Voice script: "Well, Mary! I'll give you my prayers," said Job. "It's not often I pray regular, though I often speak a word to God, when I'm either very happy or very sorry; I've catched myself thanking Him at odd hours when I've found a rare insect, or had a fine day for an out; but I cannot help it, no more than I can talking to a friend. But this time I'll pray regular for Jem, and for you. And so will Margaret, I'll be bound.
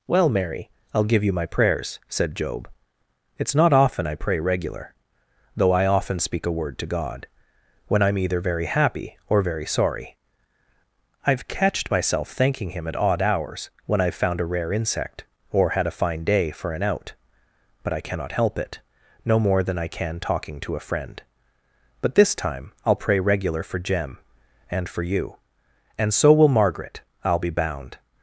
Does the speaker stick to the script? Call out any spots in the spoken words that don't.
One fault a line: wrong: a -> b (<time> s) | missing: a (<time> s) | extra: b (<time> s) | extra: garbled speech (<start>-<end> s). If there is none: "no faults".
no faults